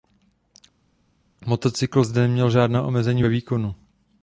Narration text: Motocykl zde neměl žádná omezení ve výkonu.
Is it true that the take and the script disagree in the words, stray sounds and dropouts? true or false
false